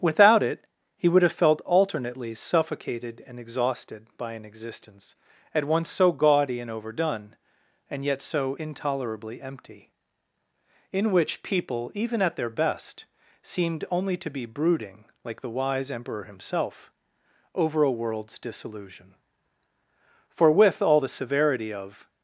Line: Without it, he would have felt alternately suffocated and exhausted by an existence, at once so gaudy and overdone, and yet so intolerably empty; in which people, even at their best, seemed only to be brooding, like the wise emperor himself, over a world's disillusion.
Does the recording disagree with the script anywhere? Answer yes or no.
yes